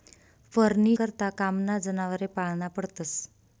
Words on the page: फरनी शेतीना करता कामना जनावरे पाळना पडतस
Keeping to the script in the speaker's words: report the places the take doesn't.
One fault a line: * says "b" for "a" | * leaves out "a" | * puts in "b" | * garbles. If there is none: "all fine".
* leaves out "शेतीना"